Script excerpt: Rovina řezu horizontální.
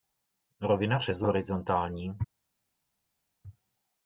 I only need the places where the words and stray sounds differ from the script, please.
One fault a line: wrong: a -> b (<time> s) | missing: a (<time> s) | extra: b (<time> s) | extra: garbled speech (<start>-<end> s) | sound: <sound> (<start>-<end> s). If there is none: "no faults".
no faults